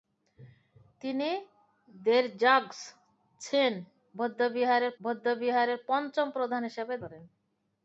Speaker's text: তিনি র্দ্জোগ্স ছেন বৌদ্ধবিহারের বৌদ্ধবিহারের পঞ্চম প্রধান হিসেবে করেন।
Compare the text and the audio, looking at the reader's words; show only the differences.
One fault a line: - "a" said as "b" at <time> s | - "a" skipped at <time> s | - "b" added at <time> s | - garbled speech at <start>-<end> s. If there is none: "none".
none